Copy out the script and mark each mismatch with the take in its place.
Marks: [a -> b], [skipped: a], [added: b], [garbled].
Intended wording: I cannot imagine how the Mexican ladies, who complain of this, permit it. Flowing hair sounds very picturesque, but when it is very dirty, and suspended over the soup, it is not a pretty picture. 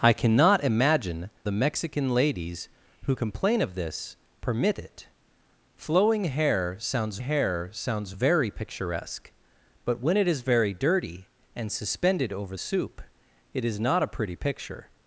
I cannot imagine [skipped: how] the Mexican ladies, who complain of this, permit it. Flowing hair sounds [added: hair sounds] very picturesque, but when it is very dirty, and suspended over [skipped: the] soup, it is not a pretty picture.